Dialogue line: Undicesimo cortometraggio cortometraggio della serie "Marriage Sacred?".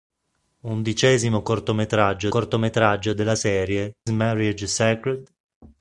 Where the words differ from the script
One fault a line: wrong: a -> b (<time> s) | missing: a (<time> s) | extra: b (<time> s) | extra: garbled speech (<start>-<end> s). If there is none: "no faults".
no faults